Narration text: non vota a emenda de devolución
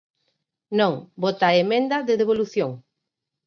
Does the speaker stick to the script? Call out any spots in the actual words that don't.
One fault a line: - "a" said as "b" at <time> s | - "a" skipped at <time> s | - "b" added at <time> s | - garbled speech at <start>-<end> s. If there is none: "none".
none